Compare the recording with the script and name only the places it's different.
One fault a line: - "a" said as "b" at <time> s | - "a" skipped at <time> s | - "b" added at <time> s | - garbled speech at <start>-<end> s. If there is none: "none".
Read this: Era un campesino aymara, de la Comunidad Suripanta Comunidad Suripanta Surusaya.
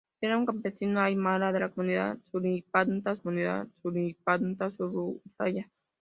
none